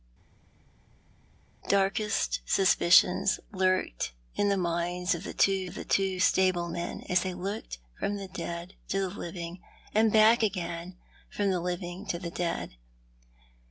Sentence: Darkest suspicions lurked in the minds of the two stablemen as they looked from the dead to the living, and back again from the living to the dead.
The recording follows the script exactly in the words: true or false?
false